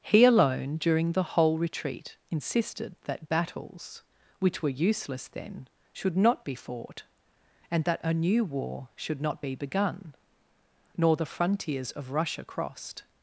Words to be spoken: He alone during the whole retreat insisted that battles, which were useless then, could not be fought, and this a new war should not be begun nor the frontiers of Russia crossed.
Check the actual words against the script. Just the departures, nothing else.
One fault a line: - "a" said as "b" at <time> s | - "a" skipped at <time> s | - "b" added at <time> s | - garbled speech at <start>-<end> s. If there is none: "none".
- "could" said as "should" at 5.9 s
- "this" said as "that" at 7.8 s